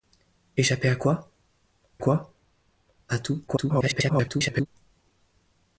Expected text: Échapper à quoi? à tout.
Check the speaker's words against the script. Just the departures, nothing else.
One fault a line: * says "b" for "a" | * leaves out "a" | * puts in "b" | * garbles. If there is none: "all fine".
* puts in "quoi"
* garbles